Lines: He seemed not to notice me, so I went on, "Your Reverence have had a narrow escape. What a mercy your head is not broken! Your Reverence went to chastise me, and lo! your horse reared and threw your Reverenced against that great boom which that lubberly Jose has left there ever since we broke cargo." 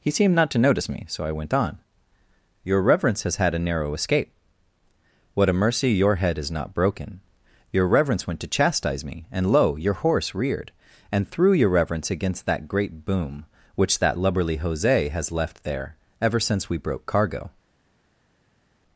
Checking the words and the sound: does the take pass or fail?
fail